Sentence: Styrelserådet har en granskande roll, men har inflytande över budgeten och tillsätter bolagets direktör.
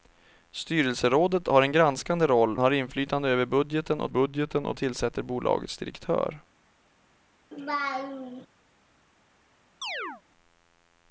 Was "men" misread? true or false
true